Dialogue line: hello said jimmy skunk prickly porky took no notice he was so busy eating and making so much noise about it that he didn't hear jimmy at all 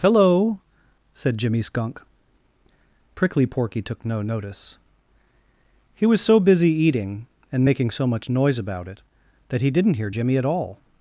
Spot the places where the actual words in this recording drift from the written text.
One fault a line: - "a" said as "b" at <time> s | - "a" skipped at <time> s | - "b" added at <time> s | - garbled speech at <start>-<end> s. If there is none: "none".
none